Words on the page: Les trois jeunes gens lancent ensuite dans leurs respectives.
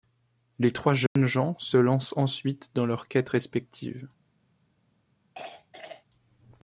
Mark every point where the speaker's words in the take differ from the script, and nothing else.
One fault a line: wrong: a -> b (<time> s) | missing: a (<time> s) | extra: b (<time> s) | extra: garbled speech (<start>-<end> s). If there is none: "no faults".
extra: se (1.6 s)
extra: quêtes (3.1 s)